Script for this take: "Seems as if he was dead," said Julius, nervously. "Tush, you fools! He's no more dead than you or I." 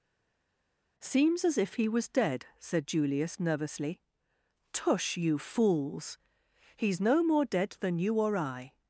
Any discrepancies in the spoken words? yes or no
no